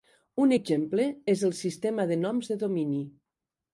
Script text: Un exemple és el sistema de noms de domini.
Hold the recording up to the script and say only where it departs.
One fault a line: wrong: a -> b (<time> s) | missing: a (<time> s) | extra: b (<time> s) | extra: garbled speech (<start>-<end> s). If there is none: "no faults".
no faults